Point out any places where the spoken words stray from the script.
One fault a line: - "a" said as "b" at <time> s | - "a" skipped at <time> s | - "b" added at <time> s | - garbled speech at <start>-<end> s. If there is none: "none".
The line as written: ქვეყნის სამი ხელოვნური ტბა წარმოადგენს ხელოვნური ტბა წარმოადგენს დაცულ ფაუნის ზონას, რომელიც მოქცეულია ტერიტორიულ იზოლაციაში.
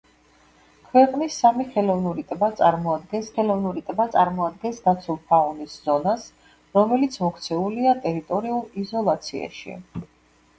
none